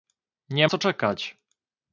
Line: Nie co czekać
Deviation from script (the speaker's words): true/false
false